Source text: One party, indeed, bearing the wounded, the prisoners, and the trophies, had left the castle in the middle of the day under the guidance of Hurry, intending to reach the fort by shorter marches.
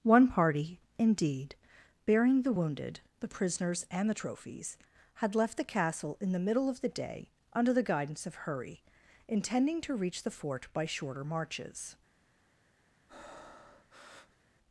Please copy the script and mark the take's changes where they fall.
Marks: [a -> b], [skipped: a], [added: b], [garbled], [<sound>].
One party, indeed, bearing the wounded, the prisoners, and the trophies, had left the castle in the middle of the day under the guidance of Hurry, intending to reach the fort by shorter marches. [breath]